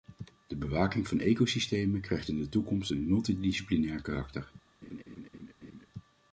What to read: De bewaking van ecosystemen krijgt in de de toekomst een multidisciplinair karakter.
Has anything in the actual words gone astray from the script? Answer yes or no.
yes